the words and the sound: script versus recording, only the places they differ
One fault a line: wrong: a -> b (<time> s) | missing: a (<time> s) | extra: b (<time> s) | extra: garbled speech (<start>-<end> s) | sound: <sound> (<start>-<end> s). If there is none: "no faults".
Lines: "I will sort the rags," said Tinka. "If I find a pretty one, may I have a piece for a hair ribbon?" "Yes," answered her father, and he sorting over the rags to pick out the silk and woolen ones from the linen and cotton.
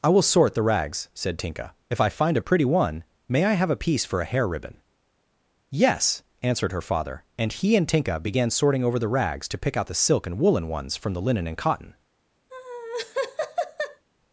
extra: and Tinka began (7.8 s)
sound: laugh (12.5-14.0 s)